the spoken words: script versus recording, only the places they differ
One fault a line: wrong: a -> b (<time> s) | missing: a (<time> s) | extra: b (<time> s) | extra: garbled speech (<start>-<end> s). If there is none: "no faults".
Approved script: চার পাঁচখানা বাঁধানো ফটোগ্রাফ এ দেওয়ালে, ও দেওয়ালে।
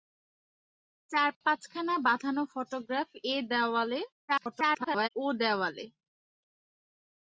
extra: garbled speech (4.3-5.1 s)